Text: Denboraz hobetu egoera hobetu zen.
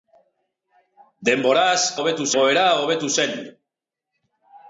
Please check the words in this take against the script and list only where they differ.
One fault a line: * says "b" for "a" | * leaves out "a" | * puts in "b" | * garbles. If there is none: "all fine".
all fine